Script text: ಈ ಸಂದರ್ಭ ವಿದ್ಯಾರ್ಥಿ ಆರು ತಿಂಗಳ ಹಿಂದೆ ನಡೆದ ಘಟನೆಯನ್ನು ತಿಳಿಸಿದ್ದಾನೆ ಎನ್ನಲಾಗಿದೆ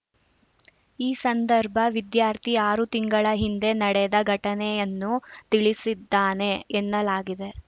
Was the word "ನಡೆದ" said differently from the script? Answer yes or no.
no